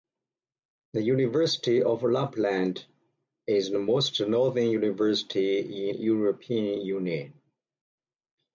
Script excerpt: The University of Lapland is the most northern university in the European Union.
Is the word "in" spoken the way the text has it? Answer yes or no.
no